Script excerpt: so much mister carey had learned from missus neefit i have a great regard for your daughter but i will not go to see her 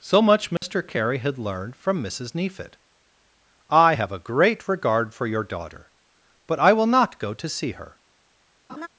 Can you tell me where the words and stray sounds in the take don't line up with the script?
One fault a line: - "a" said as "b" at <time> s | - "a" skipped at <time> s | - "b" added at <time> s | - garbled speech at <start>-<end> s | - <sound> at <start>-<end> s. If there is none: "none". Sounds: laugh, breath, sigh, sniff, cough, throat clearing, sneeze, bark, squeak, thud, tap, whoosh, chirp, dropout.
- dropout at 0.6-0.6 s
- laugh at 8.7-8.9 s